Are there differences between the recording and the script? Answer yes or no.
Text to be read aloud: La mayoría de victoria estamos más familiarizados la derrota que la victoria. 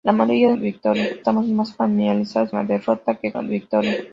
no